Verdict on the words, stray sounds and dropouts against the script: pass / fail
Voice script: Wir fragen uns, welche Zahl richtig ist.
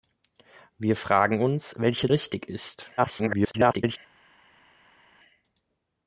fail